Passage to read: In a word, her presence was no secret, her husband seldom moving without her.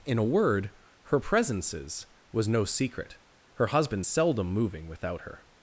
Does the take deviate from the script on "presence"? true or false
true